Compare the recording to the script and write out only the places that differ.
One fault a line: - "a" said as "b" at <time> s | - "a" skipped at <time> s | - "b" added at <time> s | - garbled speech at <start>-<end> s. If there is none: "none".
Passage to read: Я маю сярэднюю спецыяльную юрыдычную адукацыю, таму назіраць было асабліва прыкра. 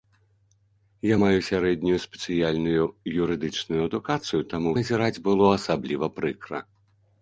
none